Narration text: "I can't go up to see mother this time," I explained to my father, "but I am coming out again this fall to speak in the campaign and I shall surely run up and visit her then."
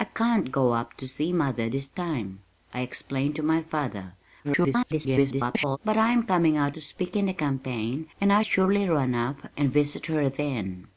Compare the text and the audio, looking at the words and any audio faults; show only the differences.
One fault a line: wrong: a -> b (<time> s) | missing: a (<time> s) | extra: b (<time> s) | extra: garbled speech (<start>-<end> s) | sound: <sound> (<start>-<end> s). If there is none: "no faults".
extra: garbled speech (4.4-5.8 s)
missing: again this fall (6.8 s)
missing: shall (8.4 s)